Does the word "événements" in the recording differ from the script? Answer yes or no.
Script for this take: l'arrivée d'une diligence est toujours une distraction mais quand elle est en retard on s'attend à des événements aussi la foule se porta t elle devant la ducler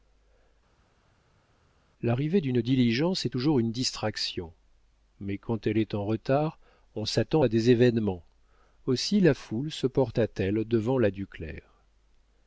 no